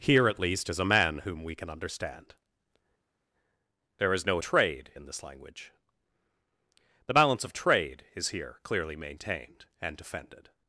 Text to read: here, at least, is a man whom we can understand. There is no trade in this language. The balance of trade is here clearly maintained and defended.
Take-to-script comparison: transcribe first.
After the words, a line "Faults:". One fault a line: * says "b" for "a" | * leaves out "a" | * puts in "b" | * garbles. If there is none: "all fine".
here, at least, is a man whom we can understand. There is no trade in this language. The balance of trade is here clearly maintained and defended.
Faults:
all fine